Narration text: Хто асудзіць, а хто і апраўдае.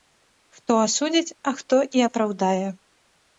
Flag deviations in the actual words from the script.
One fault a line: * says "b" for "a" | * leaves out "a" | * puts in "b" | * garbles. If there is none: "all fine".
all fine